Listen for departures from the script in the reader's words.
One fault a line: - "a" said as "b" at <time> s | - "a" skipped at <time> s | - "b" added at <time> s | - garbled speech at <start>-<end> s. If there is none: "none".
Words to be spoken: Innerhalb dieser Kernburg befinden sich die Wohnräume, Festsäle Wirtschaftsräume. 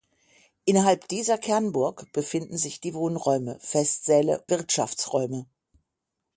none